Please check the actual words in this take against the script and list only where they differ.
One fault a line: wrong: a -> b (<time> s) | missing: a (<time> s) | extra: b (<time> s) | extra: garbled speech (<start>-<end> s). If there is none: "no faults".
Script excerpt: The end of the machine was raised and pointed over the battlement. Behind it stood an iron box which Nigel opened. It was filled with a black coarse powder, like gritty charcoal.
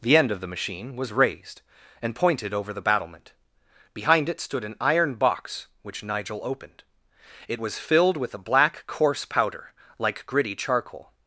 no faults